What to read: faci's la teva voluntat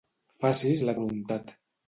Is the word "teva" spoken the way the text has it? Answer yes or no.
no